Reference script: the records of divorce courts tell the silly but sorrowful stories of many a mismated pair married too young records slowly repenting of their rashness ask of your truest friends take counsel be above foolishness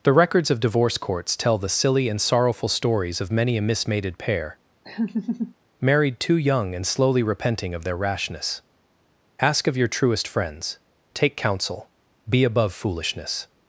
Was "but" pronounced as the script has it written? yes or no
no